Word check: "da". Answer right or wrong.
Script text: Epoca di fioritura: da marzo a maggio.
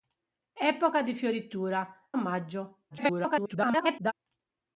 wrong